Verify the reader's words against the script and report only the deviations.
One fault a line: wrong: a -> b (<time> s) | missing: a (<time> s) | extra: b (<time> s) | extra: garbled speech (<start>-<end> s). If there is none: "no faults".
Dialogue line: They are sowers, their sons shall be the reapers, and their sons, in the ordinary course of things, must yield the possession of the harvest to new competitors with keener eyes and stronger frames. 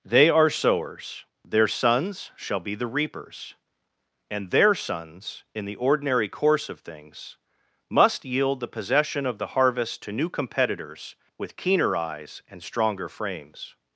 no faults